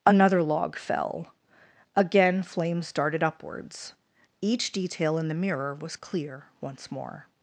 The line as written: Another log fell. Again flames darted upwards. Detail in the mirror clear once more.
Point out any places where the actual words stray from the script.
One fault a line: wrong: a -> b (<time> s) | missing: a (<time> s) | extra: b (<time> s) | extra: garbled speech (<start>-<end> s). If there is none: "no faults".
extra: Each (4.4 s)
extra: was (5.8 s)